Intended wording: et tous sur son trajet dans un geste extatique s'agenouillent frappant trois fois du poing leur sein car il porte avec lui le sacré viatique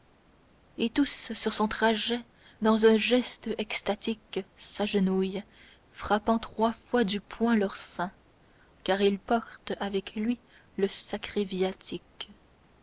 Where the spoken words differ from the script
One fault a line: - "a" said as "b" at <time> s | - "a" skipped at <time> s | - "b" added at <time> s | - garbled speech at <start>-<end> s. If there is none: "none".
none